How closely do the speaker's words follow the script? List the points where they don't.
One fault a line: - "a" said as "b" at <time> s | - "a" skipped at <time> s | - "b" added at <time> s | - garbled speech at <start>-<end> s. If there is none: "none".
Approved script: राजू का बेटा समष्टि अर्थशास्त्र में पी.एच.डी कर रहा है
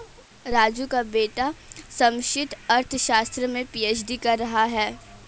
none